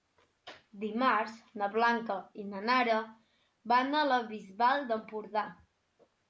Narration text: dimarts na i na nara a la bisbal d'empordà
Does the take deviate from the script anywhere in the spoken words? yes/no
yes